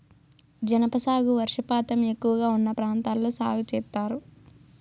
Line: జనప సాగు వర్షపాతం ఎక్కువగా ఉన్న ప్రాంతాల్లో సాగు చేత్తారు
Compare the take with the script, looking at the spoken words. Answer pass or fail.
pass